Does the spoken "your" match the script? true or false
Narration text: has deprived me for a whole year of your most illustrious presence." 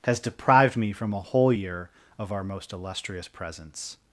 false